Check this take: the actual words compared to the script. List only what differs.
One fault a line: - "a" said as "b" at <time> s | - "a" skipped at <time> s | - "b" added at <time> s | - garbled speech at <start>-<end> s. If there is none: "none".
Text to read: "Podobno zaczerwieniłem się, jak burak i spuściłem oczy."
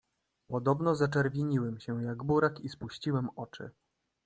none